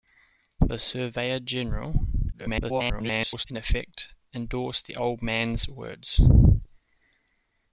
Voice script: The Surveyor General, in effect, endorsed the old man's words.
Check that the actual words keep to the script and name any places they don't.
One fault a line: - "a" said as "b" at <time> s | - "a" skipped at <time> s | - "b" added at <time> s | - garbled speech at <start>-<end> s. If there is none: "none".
- garbled speech at 2.3-3.5 s